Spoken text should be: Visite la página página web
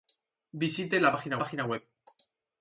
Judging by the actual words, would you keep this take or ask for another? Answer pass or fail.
pass